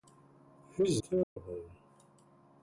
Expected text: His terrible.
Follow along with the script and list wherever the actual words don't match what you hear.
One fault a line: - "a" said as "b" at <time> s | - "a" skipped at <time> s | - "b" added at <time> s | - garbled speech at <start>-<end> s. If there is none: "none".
none